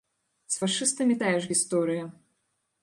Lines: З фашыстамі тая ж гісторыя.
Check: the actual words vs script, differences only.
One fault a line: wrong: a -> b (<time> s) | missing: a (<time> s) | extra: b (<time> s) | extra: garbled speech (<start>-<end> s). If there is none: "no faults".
no faults